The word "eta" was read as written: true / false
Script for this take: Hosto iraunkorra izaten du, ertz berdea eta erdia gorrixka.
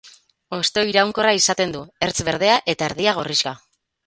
true